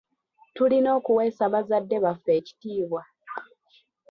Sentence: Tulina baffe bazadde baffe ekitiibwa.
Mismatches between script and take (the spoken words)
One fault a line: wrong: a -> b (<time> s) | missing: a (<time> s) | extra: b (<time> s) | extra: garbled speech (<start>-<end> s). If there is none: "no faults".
wrong: baffe -> okuweesa (1.0 s)